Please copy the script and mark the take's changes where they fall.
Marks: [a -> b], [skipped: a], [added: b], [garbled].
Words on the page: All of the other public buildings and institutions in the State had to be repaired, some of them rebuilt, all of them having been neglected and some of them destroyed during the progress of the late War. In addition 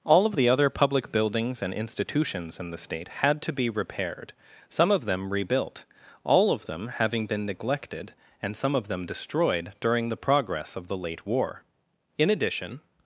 All of the other public buildings and institutions in the State had to be repaired, some of them rebuilt, all of them having been neglected and some of them destroyed during the progress of the late War. In addition